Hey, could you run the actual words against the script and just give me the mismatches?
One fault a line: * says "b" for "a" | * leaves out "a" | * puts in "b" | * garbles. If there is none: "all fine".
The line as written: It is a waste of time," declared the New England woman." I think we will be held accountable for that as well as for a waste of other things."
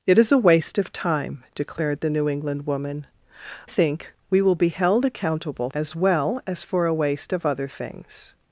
* leaves out "I"
* leaves out "for that"